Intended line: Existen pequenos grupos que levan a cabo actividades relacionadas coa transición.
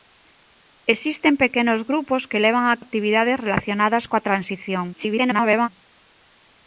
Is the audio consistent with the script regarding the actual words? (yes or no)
no